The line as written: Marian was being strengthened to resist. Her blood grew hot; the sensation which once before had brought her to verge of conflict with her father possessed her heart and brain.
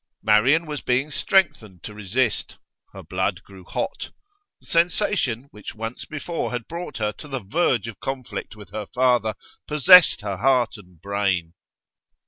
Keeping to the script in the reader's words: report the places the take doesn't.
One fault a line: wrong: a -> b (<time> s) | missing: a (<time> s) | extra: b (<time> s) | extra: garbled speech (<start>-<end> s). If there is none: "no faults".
extra: the (7.3 s)